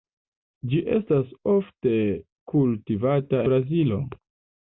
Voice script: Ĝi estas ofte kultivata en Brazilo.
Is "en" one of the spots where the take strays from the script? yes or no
yes